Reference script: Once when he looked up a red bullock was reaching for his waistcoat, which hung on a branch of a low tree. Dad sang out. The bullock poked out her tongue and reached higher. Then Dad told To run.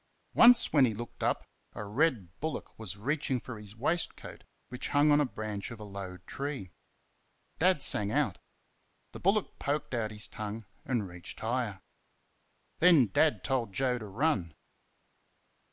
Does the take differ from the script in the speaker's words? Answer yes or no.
yes